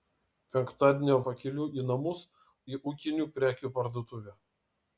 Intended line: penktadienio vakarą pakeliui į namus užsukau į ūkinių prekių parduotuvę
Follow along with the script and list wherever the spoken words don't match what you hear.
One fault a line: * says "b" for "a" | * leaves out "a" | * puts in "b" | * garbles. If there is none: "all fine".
* leaves out "vakarą"
* leaves out "užsukau"